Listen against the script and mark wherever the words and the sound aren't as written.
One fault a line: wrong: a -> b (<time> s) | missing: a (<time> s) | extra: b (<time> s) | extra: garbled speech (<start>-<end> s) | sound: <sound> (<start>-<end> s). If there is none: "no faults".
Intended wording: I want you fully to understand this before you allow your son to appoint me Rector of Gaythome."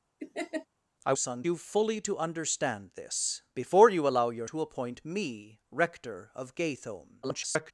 sound: laugh (0.2-0.7 s)
wrong: want -> son (1.2 s)
missing: son (4.5 s)
extra: garbled speech (7.2-7.7 s)